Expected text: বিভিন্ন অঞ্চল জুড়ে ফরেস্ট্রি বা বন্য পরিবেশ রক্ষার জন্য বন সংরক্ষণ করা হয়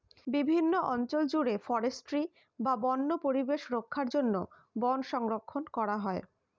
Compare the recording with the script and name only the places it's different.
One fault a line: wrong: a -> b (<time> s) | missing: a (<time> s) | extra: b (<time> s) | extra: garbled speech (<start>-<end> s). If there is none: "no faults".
no faults